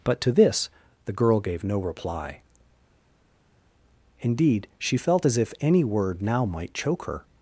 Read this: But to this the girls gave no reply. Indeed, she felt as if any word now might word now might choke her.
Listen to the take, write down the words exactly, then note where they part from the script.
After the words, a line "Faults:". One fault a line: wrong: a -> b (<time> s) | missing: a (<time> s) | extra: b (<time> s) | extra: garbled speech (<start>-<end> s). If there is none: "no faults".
But to this the girl gave no reply. Indeed, she felt as if any word now might choke her.
Faults:
wrong: girls -> girl (1.1 s)
missing: word now might (6.7 s)